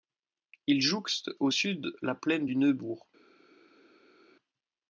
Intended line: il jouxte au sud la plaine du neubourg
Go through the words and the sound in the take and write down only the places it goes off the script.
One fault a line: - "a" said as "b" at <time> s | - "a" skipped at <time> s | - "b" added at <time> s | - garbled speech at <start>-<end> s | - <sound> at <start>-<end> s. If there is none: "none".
none